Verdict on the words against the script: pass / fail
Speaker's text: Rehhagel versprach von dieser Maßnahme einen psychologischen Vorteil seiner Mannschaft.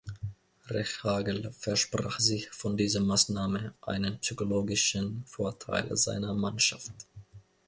fail